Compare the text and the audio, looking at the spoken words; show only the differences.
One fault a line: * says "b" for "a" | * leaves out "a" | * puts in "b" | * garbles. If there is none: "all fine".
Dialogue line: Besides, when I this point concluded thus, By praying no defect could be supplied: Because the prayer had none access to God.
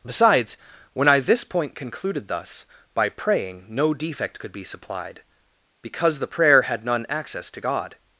all fine